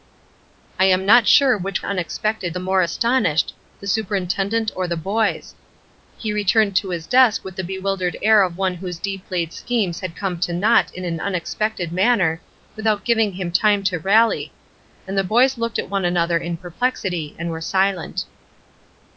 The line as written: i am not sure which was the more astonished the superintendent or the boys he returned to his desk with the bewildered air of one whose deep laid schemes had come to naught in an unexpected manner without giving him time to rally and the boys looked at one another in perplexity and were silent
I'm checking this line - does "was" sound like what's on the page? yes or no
no